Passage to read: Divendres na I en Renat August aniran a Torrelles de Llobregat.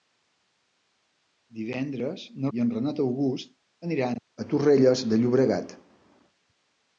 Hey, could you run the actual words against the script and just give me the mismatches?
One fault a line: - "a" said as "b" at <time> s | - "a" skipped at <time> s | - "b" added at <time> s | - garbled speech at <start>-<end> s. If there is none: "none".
none